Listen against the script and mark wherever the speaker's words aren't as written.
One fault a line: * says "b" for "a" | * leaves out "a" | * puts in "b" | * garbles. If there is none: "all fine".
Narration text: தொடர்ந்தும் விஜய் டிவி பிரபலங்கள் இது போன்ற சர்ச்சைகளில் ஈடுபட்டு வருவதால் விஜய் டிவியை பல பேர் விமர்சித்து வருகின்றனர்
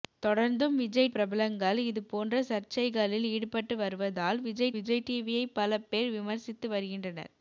* leaves out "டிவி"
* puts in "விஜய்"